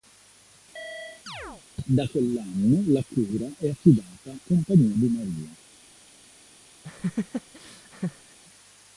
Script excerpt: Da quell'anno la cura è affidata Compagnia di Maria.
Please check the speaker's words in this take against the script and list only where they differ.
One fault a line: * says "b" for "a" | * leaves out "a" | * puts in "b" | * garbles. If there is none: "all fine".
all fine